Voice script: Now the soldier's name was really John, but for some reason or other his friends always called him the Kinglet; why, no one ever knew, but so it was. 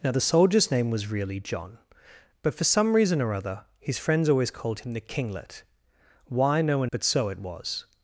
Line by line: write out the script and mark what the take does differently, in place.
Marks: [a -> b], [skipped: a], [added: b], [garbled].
Now the soldier's name was really John, but for some reason or other his friends always called him the Kinglet; why, no one [skipped: ever knew,] but so it was.